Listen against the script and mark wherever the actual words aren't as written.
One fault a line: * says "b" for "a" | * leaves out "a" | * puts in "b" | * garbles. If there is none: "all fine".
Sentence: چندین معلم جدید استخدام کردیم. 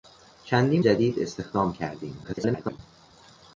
* leaves out "معلم"
* garbles